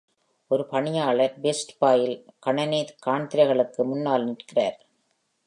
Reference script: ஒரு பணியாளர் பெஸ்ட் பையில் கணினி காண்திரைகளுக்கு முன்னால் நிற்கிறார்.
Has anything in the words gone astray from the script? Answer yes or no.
no